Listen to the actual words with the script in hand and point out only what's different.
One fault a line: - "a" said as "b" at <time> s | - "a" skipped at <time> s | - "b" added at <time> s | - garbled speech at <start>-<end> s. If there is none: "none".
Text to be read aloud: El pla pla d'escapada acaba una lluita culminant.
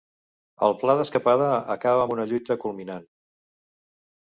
- "pla" skipped at 0.9 s
- "amb" added at 2.0 s